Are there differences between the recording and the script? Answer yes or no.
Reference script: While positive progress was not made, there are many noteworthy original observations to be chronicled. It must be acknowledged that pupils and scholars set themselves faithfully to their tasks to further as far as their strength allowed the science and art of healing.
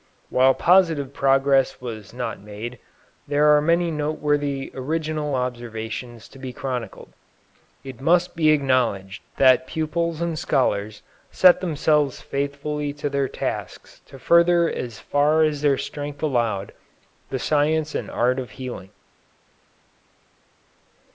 no